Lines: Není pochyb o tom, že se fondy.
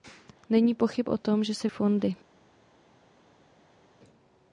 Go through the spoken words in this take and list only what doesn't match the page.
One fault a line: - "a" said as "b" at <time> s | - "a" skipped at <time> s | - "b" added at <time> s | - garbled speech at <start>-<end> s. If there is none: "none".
none